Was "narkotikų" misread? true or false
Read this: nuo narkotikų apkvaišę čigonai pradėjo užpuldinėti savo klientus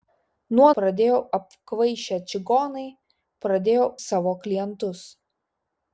true